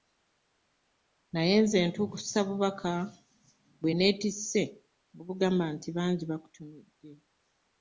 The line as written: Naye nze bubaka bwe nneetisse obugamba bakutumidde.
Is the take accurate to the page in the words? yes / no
no